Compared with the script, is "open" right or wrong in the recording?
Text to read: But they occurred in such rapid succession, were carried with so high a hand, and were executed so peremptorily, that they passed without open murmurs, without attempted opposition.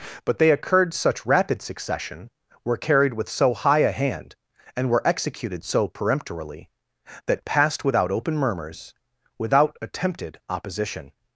right